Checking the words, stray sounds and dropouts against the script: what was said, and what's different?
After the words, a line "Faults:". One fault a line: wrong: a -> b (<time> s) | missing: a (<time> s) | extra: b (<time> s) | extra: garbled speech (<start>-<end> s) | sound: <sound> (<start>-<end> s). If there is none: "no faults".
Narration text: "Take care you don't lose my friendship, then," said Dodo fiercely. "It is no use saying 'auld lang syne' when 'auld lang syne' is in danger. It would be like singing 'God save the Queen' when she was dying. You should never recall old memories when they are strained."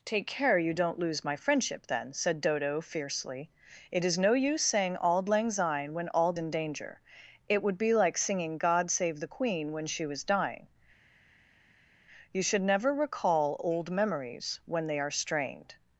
"Take care you don't lose my friendship, then," said Dodo fiercely. "It is no use saying 'auld lang syne' when 'auld in danger. It would be like singing 'God save the Queen' when she was dying. You should never recall old memories when they are strained."
Faults:
missing: lang syne is (6.4 s)